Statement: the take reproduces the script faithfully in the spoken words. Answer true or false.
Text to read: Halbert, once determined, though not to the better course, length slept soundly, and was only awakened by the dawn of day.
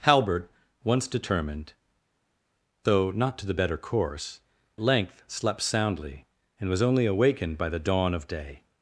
true